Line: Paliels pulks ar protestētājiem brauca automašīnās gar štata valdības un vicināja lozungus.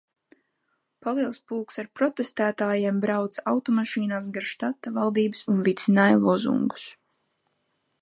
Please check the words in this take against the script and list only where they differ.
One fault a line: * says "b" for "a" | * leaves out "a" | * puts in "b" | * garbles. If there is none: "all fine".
all fine